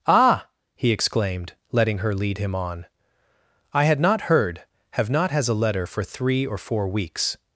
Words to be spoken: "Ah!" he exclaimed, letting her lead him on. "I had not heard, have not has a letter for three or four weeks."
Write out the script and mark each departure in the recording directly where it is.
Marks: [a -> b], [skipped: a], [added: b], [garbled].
"Ah!" he exclaimed, letting her lead him on. "I had not heard, have not has a letter for three or four weeks."